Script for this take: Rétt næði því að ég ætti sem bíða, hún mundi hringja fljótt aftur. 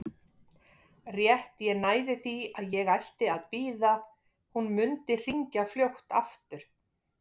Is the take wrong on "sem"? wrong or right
wrong